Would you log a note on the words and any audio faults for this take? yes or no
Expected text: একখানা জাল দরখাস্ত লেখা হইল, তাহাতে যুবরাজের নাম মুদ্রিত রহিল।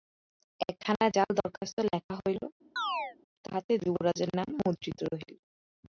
yes